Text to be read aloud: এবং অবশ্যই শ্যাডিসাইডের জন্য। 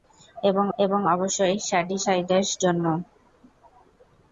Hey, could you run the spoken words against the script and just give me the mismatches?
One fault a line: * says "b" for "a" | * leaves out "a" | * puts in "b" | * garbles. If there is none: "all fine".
* puts in "এবং"